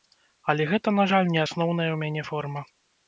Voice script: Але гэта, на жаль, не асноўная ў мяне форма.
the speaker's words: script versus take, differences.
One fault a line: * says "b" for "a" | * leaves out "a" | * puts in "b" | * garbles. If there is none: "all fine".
all fine